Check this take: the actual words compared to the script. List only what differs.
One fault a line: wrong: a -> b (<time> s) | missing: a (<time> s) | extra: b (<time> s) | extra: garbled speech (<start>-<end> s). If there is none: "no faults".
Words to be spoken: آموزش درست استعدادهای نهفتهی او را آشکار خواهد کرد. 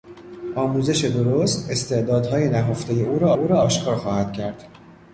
extra: او را (3.3 s)